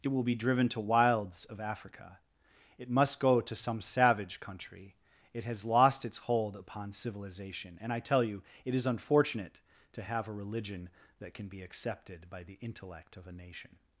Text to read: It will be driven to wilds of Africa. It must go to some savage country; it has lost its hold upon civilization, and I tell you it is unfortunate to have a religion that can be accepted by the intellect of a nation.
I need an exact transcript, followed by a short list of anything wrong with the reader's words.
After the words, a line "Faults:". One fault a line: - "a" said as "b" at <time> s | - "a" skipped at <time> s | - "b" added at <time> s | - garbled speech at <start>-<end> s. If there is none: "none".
It will be driven to wilds of Africa. It must go to some savage country; it has lost its hold upon civilization, and I tell you it is unfortunate to have a religion that can be accepted by the intellect of a nation.
Faults:
none